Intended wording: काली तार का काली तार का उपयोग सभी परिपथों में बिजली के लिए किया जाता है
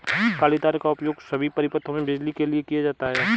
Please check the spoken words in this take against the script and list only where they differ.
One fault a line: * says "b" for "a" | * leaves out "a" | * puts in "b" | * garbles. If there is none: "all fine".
* leaves out "काली तार का"